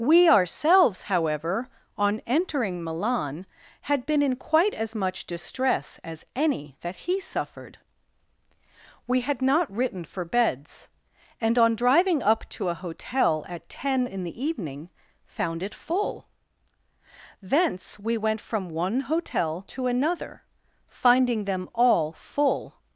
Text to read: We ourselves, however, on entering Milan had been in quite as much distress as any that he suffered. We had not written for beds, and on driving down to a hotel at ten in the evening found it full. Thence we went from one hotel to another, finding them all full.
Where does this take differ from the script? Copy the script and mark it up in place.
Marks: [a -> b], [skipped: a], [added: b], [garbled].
We ourselves, however, on entering Milan had been in quite as much distress as any that he suffered. We had not written for beds, and on driving [down -> up] to a hotel at ten in the evening found it full. Thence we went from one hotel to another, finding them all full.